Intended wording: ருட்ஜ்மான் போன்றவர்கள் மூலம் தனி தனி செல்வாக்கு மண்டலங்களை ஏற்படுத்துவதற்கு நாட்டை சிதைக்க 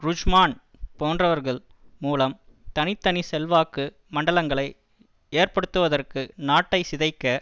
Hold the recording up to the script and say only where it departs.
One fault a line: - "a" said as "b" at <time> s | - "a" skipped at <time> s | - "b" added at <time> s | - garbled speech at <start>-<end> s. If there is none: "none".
none